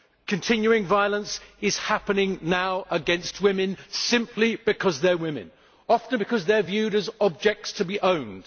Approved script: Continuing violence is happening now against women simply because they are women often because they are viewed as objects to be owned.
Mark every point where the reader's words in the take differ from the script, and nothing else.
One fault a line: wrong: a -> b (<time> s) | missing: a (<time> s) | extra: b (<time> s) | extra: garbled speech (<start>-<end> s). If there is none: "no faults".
no faults